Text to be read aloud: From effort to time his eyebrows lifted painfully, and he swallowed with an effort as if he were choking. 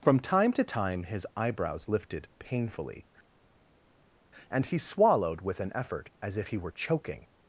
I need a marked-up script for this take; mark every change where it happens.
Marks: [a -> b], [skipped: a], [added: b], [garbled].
From [effort -> time] to time his eyebrows lifted painfully, and he swallowed with an effort as if he were choking.